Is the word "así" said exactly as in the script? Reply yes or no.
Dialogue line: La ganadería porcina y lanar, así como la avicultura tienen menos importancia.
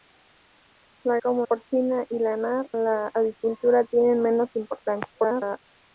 no